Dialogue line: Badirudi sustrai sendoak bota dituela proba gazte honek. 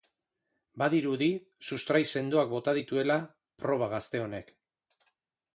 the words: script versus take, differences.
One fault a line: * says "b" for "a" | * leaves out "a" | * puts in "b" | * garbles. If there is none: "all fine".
all fine